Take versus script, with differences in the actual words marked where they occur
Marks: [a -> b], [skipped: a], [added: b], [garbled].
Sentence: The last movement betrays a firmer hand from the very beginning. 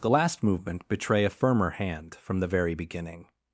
The last movement [betrays -> betray] a firmer hand from the very beginning.